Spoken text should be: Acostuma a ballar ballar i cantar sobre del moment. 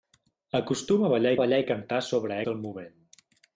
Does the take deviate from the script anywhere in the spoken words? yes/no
no